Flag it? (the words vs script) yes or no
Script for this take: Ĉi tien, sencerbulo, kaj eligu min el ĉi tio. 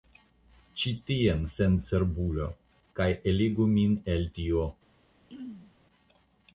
yes